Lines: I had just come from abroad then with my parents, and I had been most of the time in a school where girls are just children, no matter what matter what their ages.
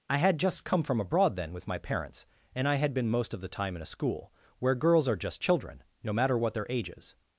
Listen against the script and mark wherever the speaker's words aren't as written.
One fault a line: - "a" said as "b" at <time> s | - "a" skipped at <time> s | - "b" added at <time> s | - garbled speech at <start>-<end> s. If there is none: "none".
- "matter what" skipped at 6.5 s